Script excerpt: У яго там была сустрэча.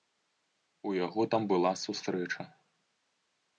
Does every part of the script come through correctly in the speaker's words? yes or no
yes